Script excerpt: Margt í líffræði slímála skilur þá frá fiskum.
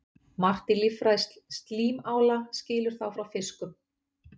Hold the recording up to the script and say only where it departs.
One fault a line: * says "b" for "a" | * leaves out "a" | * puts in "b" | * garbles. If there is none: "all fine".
all fine